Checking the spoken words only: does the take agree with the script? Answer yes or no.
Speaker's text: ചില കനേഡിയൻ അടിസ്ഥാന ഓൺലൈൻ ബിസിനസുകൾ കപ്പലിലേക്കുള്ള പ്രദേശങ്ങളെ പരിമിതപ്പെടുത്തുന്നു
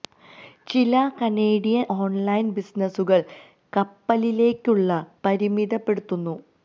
no